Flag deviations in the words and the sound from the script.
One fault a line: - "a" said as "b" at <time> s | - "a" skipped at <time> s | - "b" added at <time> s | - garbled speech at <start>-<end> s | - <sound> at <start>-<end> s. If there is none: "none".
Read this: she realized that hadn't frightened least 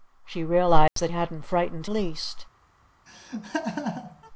- dropout at 0.9-1.0 s
- laugh at 3.1-4.3 s